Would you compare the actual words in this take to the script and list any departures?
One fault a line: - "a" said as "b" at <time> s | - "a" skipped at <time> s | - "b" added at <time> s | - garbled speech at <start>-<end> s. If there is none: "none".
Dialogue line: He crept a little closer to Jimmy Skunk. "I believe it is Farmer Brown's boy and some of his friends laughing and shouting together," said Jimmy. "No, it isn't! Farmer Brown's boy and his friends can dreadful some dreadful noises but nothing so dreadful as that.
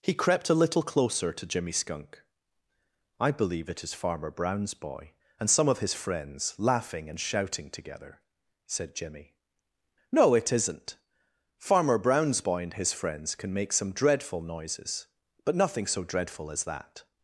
- "dreadful" said as "make" at 13.5 s